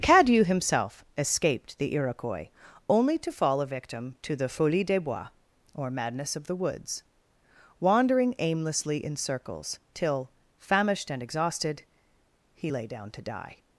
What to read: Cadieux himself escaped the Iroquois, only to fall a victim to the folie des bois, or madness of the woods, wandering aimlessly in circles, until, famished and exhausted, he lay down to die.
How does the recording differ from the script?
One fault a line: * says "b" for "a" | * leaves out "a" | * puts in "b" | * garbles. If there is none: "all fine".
* says "till" for "until"